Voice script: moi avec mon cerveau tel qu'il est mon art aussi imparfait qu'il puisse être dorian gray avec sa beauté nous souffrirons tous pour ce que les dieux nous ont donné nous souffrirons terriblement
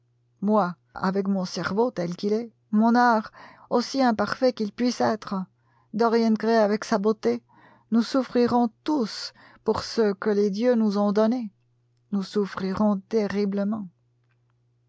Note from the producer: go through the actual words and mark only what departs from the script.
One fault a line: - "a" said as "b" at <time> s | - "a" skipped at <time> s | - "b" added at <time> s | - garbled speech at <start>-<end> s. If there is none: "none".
none